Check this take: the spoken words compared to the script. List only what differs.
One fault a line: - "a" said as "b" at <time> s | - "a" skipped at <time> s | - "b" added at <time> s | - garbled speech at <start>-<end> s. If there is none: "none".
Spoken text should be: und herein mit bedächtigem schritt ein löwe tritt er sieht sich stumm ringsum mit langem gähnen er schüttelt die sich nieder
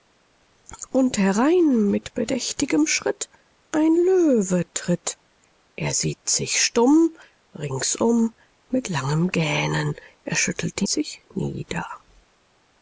none